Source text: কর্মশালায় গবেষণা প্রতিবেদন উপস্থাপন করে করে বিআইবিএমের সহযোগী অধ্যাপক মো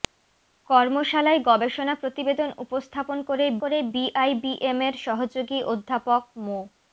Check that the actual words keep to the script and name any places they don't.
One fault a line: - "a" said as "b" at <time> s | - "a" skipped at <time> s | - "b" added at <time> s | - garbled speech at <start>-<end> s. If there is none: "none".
none